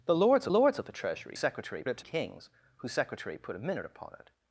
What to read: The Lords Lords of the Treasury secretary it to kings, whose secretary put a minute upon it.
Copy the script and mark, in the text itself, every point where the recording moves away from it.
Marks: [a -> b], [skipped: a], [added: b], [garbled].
The Lords Lords of the Treasury secretary it to kings, whose secretary put a minute upon it.